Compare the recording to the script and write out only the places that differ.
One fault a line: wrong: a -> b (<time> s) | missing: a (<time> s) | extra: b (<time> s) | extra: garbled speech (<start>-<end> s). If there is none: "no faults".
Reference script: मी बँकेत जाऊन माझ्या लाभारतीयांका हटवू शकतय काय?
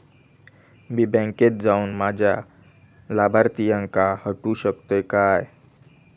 no faults